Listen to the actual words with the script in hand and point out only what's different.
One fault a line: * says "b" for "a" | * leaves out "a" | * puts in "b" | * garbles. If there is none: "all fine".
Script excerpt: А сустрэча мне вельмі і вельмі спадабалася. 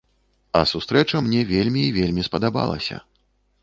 all fine